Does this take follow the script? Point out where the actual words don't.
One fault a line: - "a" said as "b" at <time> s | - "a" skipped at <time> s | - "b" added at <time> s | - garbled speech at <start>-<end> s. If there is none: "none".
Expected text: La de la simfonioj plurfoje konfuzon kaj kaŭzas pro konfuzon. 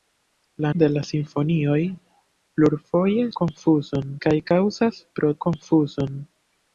none